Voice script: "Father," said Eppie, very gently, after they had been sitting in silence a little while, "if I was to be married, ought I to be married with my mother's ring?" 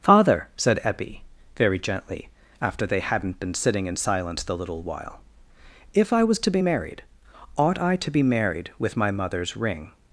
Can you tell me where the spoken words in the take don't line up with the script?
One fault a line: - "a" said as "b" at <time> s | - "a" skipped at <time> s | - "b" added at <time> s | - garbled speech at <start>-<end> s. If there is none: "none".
- "had" said as "hadn't" at 3.0 s
- "a" said as "the" at 4.4 s